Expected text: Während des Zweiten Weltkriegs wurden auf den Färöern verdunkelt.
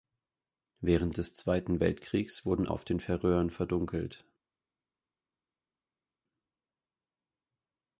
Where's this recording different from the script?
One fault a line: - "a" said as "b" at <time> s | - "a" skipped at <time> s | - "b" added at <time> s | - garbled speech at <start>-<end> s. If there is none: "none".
none